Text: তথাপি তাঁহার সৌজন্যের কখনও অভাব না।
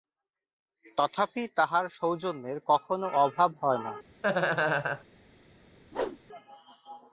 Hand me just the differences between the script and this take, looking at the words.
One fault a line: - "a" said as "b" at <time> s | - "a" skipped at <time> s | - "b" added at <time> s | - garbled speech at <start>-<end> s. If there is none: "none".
- "হয়" added at 3.6 s